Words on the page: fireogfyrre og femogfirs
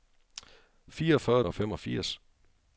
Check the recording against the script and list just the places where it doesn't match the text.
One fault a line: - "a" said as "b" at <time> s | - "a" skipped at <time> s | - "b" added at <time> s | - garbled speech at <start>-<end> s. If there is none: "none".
none